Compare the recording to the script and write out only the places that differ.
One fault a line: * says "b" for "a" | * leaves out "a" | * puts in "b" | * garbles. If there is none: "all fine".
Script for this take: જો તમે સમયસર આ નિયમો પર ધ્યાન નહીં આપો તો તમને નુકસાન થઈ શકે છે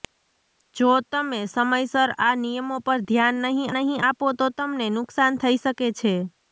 * puts in "નહીં"